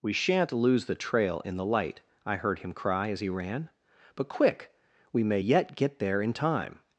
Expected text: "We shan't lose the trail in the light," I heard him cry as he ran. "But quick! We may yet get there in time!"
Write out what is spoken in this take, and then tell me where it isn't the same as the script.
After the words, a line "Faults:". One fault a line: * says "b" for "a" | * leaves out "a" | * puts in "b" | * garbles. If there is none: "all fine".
"We shan't lose the trail in the light," I heard him cry as he ran. "But quick! We may yet get there in time!"
Faults:
all fine